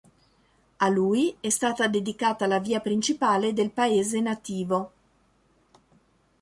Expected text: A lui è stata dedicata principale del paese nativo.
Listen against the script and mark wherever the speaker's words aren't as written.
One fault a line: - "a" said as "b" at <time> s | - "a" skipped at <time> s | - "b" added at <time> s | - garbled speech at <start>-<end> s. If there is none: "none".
- "la via" added at 2.5 s